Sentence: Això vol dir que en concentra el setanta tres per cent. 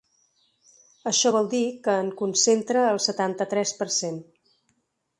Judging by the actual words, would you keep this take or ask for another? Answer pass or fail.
pass